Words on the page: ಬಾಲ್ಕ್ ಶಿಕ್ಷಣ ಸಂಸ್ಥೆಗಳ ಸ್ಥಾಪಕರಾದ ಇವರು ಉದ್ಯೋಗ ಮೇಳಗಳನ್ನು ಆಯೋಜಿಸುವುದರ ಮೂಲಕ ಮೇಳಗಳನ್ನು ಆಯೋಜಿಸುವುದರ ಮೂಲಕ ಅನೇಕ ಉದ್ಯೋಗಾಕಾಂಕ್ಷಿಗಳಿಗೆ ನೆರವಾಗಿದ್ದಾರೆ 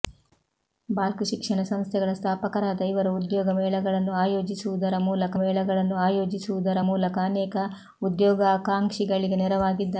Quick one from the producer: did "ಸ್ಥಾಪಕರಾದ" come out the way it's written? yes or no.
yes